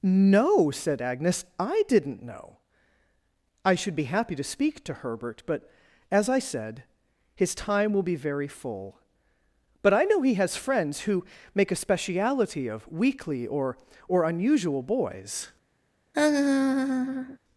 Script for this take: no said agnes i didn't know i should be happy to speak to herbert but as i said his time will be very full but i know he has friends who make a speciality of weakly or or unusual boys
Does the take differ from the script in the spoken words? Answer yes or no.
no